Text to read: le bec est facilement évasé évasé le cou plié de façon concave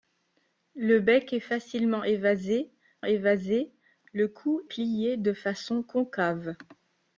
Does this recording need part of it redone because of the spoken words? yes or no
no